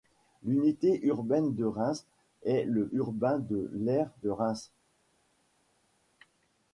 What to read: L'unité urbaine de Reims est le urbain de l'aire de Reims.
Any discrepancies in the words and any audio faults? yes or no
no